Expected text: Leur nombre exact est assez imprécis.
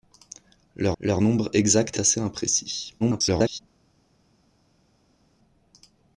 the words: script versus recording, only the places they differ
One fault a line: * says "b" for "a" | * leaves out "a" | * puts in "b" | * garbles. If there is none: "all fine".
* puts in "leur"
* leaves out "est"
* garbles